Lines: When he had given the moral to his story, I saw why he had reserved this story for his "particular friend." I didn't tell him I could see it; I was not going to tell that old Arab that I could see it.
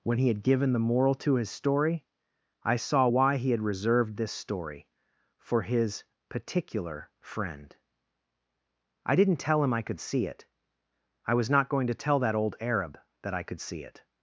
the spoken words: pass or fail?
pass